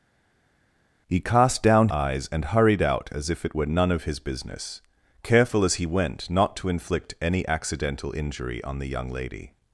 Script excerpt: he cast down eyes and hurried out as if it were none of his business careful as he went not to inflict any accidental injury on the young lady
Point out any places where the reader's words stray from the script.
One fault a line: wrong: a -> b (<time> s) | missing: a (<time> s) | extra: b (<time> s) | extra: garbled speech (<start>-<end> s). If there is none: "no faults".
no faults